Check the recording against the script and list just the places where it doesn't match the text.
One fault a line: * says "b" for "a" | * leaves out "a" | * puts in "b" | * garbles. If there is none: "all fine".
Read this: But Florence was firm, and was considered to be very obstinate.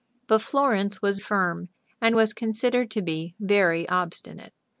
all fine